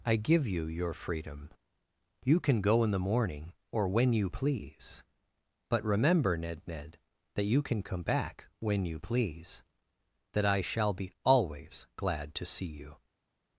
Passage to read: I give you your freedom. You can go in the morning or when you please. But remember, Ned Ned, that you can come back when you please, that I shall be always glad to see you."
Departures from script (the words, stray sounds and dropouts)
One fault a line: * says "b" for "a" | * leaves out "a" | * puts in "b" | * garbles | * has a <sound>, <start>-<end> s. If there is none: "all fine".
all fine